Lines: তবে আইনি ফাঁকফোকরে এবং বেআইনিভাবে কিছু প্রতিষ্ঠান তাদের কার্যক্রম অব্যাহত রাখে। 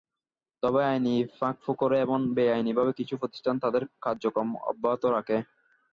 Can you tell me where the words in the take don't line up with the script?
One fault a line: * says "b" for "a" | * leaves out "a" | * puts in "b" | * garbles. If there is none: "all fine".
all fine